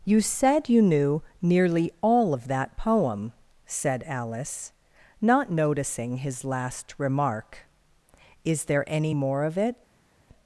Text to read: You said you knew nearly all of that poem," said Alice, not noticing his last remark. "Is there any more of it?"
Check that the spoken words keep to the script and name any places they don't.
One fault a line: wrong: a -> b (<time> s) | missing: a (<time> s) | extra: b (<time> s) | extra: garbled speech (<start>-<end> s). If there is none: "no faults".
no faults